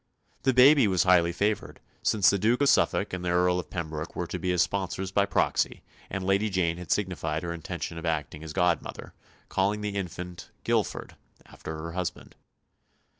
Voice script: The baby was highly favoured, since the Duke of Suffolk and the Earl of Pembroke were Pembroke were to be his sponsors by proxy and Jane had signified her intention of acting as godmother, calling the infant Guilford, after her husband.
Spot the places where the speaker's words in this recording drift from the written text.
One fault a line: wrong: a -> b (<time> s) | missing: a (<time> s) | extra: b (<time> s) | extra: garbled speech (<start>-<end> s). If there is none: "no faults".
missing: Pembroke were (4.3 s)
extra: Lady (6.2 s)